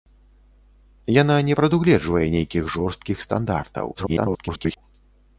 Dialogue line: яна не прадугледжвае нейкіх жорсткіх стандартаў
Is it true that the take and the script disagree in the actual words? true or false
true